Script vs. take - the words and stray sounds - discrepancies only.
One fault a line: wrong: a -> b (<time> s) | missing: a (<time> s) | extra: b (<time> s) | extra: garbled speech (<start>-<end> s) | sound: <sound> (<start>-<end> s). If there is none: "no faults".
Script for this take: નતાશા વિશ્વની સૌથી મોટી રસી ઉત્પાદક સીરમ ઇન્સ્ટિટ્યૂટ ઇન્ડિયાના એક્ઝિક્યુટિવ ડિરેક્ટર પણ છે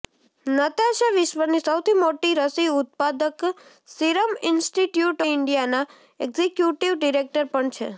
no faults